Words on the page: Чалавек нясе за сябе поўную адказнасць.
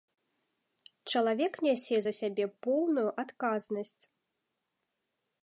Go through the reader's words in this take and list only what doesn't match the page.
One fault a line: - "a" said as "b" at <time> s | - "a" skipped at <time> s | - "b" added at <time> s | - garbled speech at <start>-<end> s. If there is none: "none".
none